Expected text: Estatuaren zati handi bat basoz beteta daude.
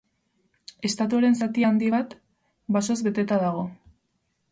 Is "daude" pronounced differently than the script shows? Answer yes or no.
yes